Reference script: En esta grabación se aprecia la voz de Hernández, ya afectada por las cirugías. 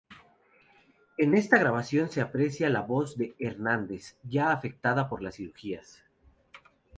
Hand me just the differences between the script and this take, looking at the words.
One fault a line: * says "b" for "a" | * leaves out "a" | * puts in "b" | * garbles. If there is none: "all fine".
all fine